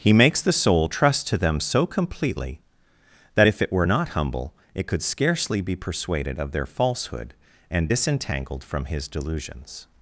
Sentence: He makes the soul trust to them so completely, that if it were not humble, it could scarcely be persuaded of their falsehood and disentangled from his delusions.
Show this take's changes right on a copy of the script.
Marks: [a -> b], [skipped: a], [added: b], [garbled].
He makes the soul trust to them so completely, that if it were not humble, it could scarcely be persuaded of their falsehood and disentangled from his delusions.